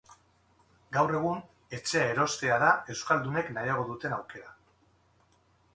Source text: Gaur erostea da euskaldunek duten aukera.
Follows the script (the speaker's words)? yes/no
no